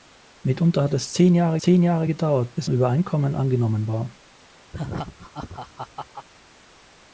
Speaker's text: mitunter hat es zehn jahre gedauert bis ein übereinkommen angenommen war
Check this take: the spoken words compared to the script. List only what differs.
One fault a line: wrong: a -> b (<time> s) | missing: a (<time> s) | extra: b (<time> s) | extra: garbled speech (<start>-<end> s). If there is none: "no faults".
extra: zehn jahre (1.6 s)
missing: ein (2.7 s)